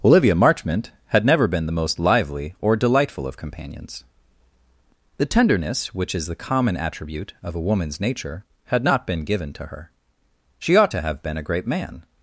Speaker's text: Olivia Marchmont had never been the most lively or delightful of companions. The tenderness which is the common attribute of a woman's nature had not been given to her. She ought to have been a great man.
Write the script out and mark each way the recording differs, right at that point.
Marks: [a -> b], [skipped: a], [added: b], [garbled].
Olivia Marchmont had never been the most lively or delightful of companions. The tenderness which is the common attribute of a woman's nature had not been given to her. She ought to have been a great man.